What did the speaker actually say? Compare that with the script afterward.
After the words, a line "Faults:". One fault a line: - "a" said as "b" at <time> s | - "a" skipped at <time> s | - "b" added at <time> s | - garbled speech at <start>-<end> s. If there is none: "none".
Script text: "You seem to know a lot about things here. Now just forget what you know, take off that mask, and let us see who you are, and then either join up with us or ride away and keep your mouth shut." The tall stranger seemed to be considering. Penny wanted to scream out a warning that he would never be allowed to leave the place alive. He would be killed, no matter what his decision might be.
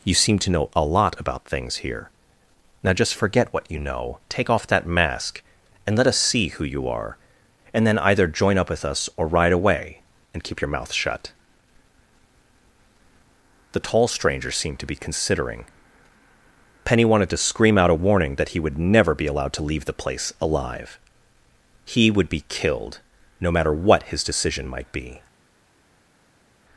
"You seem to know a lot about things here. Now just forget what you know, take off that mask, and let us see who you are, and then either join up with us or ride away and keep your mouth shut." The tall stranger seemed to be considering. Penny wanted to scream out a warning that he would never be allowed to leave the place alive. He would be killed, no matter what his decision might be.
Faults:
none